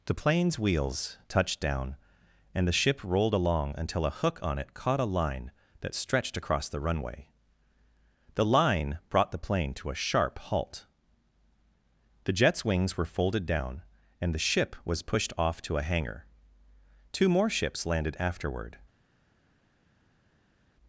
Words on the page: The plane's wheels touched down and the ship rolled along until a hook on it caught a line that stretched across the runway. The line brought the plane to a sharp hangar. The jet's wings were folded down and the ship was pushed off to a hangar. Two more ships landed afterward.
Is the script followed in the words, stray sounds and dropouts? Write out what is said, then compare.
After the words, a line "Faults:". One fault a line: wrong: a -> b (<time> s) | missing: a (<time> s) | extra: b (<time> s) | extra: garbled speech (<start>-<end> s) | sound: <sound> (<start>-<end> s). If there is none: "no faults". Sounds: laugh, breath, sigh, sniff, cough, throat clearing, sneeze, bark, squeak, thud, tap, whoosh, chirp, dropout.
The plane's wheels touched down and the ship rolled along until a hook on it caught a line that stretched across the runway. The line brought the plane to a sharp halt. The jet's wings were folded down and the ship was pushed off to a hangar. Two more ships landed afterward.
Faults:
wrong: hangar -> halt (10.4 s)